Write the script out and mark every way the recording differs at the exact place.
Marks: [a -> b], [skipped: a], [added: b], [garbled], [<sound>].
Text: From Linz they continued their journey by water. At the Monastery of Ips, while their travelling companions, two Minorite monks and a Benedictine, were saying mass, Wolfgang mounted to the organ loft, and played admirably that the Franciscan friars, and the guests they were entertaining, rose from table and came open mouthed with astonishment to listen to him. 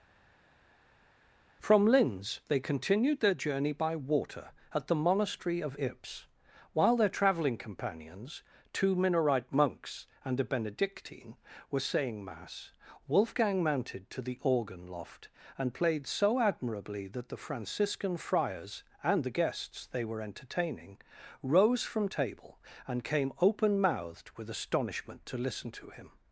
From Linz they continued their journey by water. At the Monastery of Ips, while their travelling companions, two Minorite monks and a Benedictine, were saying mass, Wolfgang mounted to the organ loft, and played [added: so] admirably that the Franciscan friars, and the guests they were entertaining, rose from table and came open mouthed with astonishment to listen to him.